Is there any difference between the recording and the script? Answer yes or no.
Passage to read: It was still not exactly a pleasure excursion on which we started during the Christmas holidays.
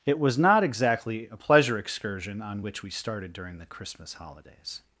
yes